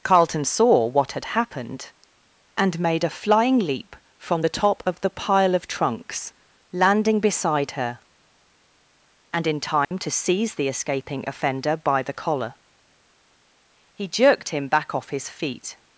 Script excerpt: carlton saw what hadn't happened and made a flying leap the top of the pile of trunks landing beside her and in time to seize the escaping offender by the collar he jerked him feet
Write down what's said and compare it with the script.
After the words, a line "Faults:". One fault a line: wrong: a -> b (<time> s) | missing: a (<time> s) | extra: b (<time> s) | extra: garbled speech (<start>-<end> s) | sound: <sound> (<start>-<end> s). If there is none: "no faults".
carlton saw what had happened and made a flying leap from the top of the pile of trunks landing beside her and in time to seize the escaping offender by the collar he jerked him back off his feet
Faults:
wrong: hadn't -> had (1.1 s)
extra: from (4.2 s)
sound: dropout (9.8-9.9 s)
extra: back off his (14.7 s)